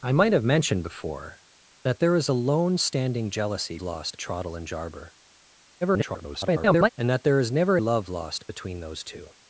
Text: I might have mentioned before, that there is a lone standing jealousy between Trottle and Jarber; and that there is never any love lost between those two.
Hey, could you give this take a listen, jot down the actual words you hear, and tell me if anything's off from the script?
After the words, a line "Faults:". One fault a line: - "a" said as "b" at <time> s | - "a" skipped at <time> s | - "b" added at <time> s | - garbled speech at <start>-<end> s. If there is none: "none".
I might have mentioned before, that there is a lone standing jealousy lost Trottle and Jarber; [garbled] and that there is never love lost between those two.
Faults:
- "between" said as "lost" at 3.8 s
- garbled speech at 5.8-6.9 s
- "any" skipped at 7.8 s